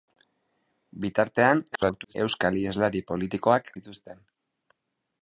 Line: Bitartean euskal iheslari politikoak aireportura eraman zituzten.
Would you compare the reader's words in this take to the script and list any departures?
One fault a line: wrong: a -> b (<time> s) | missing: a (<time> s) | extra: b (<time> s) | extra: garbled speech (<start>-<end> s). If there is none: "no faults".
extra: garbled speech (1.7-2.1 s)
missing: aireportura eraman (3.7 s)